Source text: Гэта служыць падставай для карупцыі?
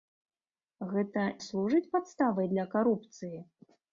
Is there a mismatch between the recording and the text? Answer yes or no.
no